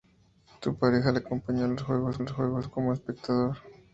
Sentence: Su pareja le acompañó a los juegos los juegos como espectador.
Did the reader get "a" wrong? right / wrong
right